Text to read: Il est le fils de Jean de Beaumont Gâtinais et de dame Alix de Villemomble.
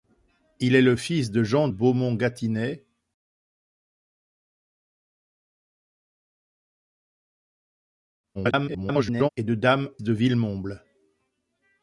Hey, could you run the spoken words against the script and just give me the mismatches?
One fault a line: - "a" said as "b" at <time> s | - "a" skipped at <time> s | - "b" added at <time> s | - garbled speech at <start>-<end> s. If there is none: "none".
- "de" skipped at 1.7 s
- garbled speech at 8.3-9.3 s
- "Alix" skipped at 9.9 s